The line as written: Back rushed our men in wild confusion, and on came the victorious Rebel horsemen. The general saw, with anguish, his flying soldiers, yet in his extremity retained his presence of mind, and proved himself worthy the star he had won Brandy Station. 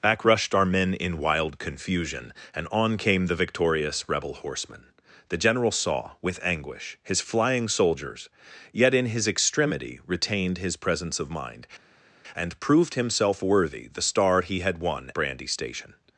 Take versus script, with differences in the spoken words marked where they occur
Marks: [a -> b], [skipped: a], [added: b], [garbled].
Back rushed our men in wild confusion, and on came the victorious Rebel horsemen. The general saw, with anguish, his flying soldiers, yet in his extremity retained his presence of mind, and proved himself worthy the star he had won Brandy Station.